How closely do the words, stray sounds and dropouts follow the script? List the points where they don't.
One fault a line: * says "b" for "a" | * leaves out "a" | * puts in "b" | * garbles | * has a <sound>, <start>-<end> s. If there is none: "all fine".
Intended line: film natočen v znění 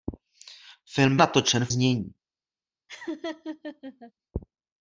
* has a laugh, 2.9-4.1 s